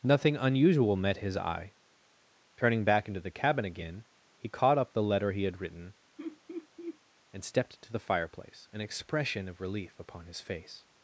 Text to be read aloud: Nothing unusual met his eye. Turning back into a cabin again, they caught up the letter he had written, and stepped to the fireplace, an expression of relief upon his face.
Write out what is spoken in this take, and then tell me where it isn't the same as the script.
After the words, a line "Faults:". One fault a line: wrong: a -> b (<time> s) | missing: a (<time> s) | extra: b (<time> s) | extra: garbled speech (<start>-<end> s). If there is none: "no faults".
Nothing unusual met his eye. Turning back into the cabin again, he caught up the letter he had written, and stepped to the fireplace, an expression of relief upon his face.
Faults:
wrong: a -> the (3.2 s)
wrong: they -> he (4.3 s)